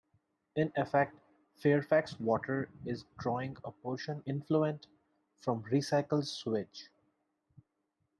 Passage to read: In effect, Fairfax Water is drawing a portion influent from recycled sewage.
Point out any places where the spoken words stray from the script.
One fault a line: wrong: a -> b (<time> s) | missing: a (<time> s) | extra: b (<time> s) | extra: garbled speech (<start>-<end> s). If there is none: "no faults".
no faults